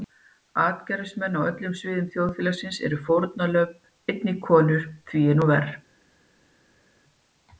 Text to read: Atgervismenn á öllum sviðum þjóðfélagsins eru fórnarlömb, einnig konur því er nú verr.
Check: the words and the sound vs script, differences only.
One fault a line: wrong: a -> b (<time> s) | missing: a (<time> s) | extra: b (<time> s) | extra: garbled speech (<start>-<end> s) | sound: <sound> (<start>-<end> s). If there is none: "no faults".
no faults